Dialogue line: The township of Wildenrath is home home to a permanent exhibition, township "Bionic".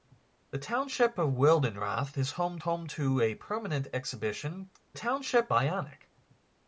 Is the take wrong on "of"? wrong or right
right